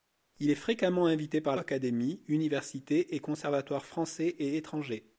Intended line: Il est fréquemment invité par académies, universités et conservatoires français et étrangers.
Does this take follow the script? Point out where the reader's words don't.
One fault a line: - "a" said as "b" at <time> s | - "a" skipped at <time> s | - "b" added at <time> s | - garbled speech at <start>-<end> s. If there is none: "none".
none